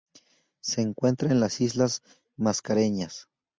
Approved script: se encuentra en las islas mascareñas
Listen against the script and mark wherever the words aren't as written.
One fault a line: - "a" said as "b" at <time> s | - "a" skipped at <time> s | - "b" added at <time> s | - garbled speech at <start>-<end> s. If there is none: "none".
none